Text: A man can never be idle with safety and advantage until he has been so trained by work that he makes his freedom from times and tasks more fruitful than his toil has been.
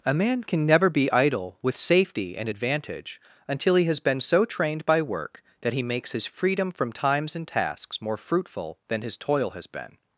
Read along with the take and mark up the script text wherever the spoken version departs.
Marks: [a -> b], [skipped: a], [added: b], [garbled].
A man can never be idle with safety and advantage until he has been so trained by work that he makes his freedom from times and tasks more fruitful than his toil has been.